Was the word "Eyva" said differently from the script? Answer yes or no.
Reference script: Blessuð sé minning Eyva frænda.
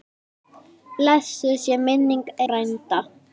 yes